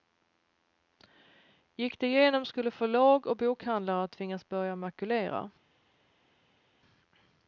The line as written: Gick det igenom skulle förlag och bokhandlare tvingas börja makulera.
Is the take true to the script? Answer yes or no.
yes